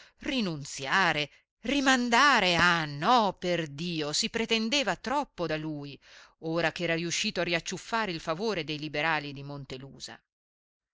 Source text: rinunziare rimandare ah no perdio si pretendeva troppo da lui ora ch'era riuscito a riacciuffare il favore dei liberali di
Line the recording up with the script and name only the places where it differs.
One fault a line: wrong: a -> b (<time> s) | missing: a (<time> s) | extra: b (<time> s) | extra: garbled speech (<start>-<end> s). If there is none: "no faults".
no faults